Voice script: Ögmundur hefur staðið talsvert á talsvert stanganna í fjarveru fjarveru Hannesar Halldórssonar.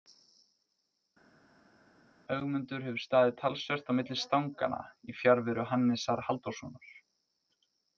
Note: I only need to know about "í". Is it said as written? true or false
true